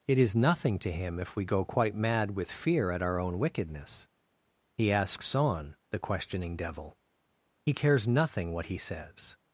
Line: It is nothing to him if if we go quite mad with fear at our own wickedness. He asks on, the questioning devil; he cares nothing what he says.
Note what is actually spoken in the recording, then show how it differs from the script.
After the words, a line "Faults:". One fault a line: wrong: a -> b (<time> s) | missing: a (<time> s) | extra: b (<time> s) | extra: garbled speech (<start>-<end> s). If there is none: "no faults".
It is nothing to him if we go quite mad with fear at our own wickedness. He asks on, the questioning devil; he cares nothing what he says.
Faults:
missing: if (1.4 s)